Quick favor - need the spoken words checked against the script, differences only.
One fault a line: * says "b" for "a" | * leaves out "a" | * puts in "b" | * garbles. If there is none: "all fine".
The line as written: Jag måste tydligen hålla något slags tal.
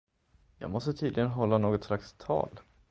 all fine